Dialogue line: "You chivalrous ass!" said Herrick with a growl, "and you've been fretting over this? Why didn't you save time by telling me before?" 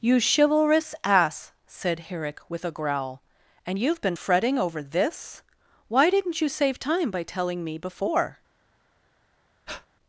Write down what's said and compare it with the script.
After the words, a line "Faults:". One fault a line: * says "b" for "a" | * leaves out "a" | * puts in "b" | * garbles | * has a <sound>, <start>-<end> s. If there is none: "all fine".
"You chivalrous ass!" said Herrick with a growl, "and you've been fretting over this? Why didn't you save time by telling me before?"
Faults:
* has a breath, 9.7-9.9 s